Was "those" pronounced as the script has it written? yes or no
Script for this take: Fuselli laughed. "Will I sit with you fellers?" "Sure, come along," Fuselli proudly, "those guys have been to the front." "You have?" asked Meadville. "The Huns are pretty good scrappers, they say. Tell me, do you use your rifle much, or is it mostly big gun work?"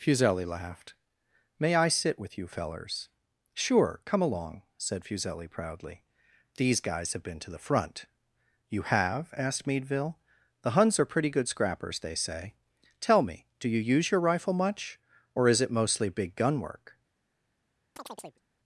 no